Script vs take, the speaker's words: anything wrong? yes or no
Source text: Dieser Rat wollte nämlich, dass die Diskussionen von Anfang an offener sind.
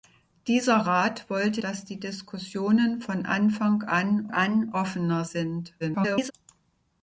yes